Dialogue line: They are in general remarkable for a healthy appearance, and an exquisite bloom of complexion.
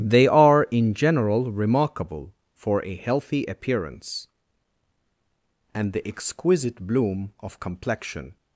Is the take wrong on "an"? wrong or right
wrong